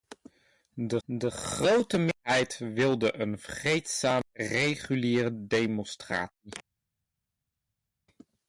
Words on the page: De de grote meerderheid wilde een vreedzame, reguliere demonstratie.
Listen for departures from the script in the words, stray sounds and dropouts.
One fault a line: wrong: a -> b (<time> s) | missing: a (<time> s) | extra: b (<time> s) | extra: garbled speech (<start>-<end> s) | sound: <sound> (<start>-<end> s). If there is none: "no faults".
no faults